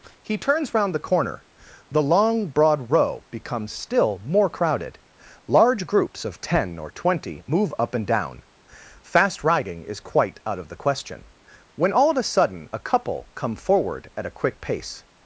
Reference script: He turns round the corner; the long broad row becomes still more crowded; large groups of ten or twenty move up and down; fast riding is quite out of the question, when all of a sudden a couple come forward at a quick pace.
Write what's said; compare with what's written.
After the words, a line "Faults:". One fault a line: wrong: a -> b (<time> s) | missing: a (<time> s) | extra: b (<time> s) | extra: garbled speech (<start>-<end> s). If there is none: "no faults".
He turns round the corner; the long broad row becomes still more crowded; large groups of ten or twenty move up and down; fast riding is quite out of the question, when all of a sudden a couple come forward at a quick pace.
Faults:
no faults